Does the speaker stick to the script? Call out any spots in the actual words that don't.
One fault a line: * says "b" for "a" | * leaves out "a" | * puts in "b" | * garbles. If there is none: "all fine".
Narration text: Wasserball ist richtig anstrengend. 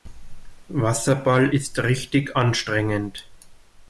all fine